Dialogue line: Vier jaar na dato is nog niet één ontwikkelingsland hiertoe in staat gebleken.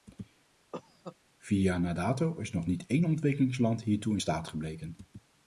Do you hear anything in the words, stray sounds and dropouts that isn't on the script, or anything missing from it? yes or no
yes